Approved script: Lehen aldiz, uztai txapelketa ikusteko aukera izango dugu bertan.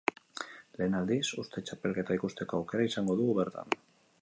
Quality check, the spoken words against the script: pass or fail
pass